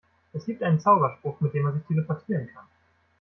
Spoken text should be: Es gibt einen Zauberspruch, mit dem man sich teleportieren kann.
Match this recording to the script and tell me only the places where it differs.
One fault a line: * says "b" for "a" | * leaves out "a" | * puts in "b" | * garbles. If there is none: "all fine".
all fine